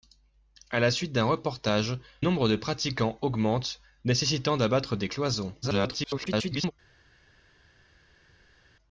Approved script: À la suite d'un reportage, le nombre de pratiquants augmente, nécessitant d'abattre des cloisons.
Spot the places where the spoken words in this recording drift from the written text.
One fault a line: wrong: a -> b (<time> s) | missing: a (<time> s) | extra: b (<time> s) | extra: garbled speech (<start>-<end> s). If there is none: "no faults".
missing: le (2.0 s)
extra: garbled speech (5.6-6.7 s)